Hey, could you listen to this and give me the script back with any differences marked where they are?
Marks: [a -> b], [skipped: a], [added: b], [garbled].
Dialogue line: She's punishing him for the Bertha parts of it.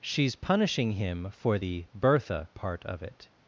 She's punishing him for the Bertha [parts -> part] of it.